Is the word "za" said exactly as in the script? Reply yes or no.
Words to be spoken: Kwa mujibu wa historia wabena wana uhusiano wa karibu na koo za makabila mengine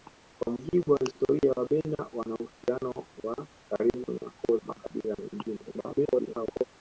no